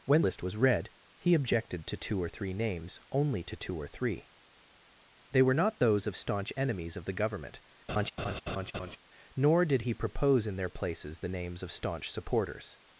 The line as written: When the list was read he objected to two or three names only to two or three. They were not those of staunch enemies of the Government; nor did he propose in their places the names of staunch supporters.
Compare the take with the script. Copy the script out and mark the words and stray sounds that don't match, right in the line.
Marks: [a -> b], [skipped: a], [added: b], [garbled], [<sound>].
When [skipped: the] list was read he objected to two or three names only to two or three. They were not those of staunch enemies of the Government; [laugh] nor did he propose in their places the names of staunch supporters.